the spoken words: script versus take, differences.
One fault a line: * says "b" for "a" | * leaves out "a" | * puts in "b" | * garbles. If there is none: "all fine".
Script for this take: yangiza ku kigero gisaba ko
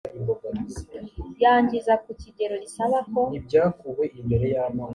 all fine